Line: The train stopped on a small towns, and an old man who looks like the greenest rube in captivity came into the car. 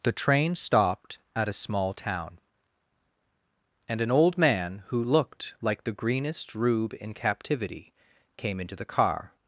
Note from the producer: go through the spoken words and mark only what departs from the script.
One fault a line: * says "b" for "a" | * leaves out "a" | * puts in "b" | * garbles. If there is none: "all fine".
* says "at" for "on"
* says "town" for "towns"
* says "looked" for "looks"